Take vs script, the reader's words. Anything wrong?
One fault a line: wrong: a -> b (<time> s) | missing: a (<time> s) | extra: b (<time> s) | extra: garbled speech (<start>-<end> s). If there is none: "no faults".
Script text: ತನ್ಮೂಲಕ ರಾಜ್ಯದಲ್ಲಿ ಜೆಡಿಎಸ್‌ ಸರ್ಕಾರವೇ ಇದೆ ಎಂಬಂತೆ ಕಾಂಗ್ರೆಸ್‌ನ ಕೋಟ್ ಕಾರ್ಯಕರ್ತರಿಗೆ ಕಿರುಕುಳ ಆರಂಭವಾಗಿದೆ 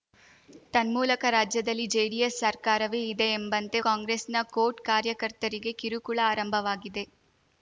no faults